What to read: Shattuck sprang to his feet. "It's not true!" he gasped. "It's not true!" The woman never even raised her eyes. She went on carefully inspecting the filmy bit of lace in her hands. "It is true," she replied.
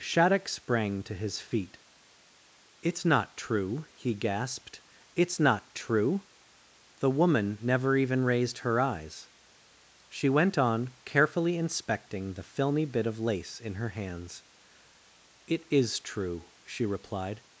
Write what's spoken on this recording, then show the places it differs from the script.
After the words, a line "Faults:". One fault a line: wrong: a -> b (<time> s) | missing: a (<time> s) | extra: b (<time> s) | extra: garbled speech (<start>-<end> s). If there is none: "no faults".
Shattuck sprang to his feet. "It's not true!" he gasped. "It's not true!" The woman never even raised her eyes. She went on carefully inspecting the filmy bit of lace in her hands. "It is true," she replied.
Faults:
no faults